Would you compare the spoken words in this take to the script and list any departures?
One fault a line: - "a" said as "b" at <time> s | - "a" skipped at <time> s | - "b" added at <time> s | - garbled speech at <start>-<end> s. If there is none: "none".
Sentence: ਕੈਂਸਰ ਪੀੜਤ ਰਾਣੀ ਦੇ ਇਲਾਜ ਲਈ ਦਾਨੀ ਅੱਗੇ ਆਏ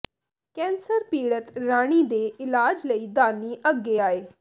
none